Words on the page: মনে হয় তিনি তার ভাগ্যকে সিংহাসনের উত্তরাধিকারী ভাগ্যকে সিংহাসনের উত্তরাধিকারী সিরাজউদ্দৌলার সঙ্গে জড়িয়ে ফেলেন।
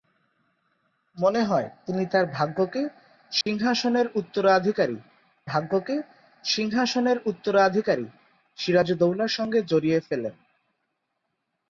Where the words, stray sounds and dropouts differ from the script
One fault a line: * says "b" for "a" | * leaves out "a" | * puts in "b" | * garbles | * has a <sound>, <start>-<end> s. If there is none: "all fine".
* has a dropout, 3.4-3.5 s